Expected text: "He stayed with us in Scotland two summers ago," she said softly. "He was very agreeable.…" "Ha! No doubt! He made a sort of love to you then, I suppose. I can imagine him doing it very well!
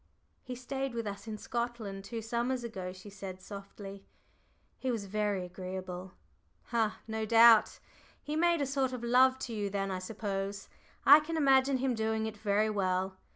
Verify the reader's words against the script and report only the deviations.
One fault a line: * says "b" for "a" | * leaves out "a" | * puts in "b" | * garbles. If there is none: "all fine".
all fine